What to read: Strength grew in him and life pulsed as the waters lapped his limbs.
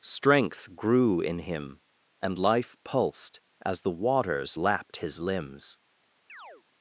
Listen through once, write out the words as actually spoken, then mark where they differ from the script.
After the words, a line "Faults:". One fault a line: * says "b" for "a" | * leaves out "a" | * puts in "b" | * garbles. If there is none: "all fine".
Strength grew in him and life pulsed as the waters lapped his limbs.
Faults:
all fine